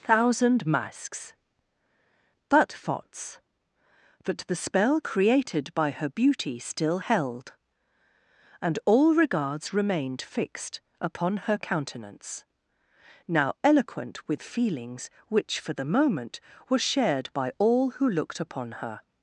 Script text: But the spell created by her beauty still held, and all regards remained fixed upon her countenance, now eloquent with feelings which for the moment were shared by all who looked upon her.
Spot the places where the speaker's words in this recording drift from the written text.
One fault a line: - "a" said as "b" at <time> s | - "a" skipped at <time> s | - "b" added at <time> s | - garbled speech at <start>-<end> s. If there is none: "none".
- "thousand masks" added at 0.0 s
- "thoughts that" added at 2.7 s